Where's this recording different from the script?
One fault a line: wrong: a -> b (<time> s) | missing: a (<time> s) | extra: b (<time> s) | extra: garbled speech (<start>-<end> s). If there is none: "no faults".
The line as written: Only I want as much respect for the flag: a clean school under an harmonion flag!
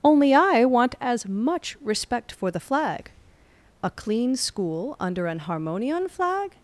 no faults